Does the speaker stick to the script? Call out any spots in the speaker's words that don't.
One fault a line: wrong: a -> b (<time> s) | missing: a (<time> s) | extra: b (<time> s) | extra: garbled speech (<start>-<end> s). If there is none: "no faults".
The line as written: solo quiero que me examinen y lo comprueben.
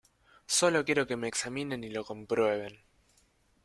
no faults